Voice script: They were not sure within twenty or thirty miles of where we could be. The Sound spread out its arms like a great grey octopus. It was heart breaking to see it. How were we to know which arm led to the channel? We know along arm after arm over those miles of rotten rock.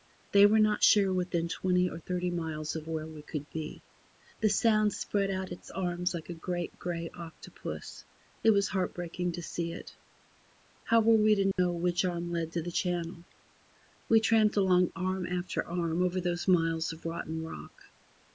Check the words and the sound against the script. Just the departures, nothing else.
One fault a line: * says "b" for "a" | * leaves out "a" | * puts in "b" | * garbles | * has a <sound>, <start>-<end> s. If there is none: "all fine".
* has a dropout, 11.5-11.6 s
* says "tramped" for "know"